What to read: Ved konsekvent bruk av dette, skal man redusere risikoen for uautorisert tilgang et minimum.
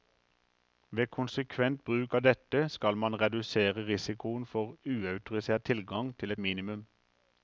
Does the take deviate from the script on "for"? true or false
false